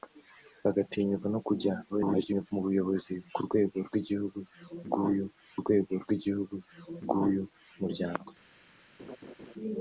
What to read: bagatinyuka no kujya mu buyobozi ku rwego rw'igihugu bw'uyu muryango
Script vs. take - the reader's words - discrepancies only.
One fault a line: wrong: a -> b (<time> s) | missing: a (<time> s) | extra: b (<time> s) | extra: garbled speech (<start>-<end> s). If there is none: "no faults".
extra: garbled speech (1.9-2.5 s)
extra: rwego rw'igihugu bw'uyu (5.6 s)